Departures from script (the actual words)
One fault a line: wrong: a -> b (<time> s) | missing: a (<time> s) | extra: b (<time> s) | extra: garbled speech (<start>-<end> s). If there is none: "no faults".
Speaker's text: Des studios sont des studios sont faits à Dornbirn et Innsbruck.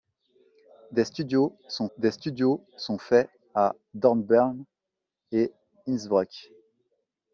no faults